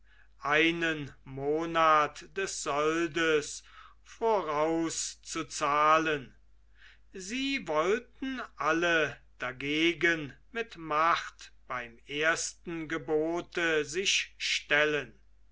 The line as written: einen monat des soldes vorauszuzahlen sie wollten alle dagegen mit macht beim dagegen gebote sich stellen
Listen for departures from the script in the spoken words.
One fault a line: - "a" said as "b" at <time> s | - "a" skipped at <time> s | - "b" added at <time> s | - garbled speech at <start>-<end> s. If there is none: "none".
- "dagegen" said as "ersten" at 12.1 s